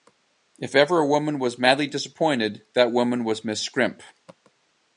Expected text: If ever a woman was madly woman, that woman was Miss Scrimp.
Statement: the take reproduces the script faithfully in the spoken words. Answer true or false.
false